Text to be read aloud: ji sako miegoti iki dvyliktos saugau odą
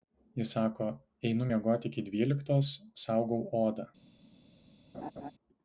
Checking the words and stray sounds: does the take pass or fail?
fail